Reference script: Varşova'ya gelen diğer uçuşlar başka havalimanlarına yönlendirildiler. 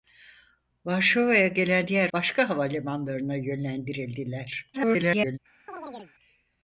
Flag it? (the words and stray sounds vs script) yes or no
yes